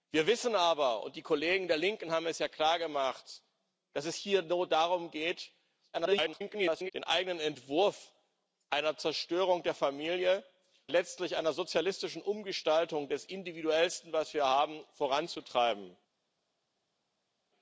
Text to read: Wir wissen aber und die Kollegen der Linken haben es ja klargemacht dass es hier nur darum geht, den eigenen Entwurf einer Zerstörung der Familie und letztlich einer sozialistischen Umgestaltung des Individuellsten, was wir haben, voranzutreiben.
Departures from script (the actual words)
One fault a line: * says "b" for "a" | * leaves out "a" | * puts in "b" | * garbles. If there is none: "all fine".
* garbles
* leaves out "und"